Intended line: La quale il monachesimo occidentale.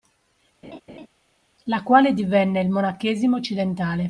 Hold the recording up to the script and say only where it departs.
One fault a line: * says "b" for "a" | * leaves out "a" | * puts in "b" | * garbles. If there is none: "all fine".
* puts in "divenne"